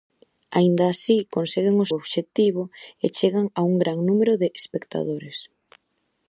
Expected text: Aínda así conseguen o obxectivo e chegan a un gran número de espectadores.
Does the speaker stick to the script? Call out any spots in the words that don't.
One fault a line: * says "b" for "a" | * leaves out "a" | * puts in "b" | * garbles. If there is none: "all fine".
all fine